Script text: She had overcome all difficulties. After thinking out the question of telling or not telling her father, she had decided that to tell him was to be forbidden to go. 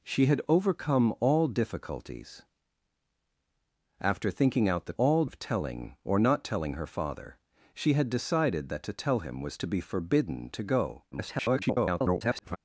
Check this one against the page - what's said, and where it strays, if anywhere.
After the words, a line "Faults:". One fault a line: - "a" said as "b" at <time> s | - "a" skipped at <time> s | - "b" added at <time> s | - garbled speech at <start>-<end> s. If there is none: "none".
She had overcome all difficulties. After thinking out the all of telling or not telling her father, she had decided that to tell him was to be forbidden to go. [garbled]
Faults:
- "question" said as "all" at 5.0 s
- garbled speech at 11.1-12.6 s